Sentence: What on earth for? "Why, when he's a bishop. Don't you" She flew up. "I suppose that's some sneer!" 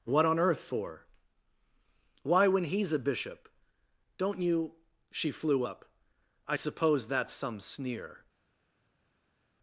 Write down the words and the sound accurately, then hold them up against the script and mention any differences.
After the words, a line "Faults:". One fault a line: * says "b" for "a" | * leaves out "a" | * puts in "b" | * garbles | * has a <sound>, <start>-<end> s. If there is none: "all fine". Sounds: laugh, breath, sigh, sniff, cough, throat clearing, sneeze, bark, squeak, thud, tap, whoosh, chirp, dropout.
What on earth for? "Why, when he's a bishop. Don't you" She flew up. "I suppose that's some sneer!"
Faults:
all fine